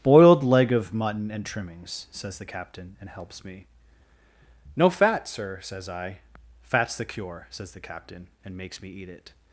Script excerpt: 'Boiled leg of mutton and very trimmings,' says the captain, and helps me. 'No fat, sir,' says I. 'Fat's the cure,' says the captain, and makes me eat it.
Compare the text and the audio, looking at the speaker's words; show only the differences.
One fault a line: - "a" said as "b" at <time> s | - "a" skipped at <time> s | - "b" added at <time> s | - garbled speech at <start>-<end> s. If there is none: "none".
- "very" skipped at 1.4 s